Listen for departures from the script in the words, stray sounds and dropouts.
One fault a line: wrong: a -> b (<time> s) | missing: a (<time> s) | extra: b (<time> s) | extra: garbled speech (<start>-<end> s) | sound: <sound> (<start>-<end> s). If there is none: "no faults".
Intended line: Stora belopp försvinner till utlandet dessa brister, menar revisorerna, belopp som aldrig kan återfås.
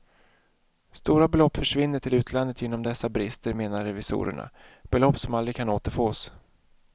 extra: genom (2.6 s)